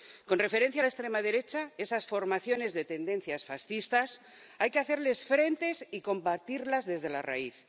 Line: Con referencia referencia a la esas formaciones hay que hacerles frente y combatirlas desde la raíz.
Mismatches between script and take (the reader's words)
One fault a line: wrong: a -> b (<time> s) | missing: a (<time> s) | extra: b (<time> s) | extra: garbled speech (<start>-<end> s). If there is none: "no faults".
missing: referencia (0.8 s)
extra: extrema derecha (0.9 s)
extra: de tendencias fascistas (2.7 s)